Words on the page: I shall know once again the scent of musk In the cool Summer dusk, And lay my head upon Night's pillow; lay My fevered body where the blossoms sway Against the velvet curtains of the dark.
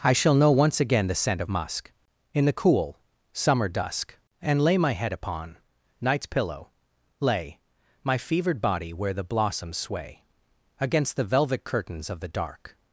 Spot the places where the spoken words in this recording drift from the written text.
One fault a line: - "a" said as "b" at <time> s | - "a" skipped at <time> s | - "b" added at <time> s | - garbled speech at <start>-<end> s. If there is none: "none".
none